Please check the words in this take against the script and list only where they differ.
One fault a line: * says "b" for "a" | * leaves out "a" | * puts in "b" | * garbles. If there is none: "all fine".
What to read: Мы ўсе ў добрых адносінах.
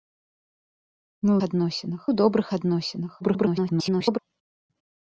* says "адносінах" for "ўсе"
* garbles